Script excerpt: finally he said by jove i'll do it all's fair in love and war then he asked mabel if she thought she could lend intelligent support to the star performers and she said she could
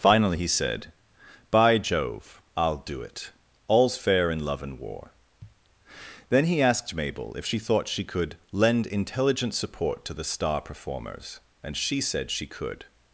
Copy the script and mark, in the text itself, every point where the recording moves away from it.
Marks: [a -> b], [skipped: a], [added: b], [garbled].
finally he said by jove i'll do it all's fair in love and war then he asked mabel if she thought she could lend intelligent support to the star performers and she said she could